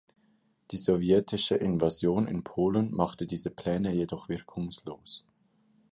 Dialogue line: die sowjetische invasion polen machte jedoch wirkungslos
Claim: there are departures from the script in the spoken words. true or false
true